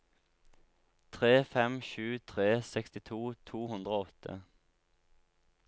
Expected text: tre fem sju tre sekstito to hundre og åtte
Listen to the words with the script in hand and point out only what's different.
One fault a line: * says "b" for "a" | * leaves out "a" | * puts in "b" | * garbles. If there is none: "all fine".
all fine